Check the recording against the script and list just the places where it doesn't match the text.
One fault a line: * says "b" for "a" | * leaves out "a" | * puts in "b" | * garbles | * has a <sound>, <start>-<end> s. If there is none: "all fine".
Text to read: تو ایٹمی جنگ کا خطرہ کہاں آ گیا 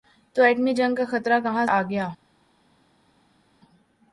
all fine